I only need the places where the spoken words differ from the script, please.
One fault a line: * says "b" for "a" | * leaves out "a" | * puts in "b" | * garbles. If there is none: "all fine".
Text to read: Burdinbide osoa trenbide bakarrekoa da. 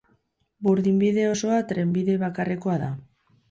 all fine